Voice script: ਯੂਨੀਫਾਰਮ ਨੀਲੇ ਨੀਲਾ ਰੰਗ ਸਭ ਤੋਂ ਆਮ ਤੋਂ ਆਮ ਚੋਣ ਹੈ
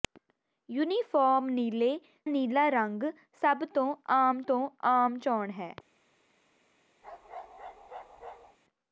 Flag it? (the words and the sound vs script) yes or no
yes